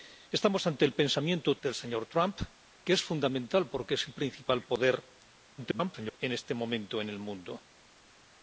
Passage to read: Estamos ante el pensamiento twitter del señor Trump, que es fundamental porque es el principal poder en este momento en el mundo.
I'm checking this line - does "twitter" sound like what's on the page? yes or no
no